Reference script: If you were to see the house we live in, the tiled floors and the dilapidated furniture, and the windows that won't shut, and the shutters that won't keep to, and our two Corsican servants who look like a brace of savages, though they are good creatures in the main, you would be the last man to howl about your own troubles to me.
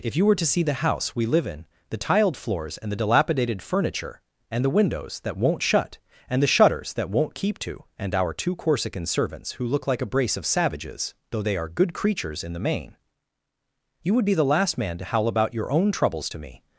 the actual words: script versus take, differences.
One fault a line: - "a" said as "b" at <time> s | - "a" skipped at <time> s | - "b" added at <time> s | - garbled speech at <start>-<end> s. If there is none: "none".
none